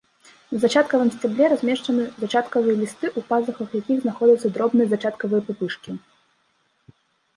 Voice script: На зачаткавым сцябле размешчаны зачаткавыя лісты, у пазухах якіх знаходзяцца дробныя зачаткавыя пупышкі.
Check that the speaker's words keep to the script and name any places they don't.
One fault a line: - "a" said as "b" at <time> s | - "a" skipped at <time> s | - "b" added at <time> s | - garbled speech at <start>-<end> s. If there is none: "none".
none